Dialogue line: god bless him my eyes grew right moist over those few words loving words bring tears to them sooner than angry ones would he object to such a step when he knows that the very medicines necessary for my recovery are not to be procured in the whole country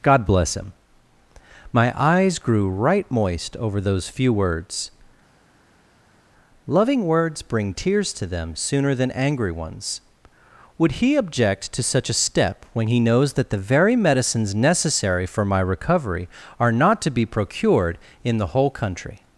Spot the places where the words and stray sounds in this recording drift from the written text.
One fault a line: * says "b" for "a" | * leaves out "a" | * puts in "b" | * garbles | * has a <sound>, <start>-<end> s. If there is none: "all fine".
all fine